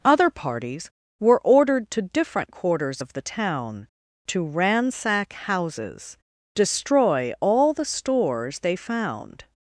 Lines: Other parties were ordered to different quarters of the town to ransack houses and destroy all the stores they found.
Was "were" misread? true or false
false